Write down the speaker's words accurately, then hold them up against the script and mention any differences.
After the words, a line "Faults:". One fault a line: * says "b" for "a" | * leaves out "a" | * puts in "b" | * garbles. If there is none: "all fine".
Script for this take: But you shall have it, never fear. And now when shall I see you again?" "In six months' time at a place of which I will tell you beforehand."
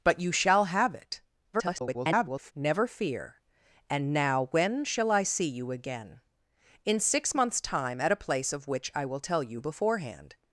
But you shall have it, [garbled] never fear. And now when shall I see you again?" "In six months' time at a place of which I will tell you beforehand."
Faults:
* garbles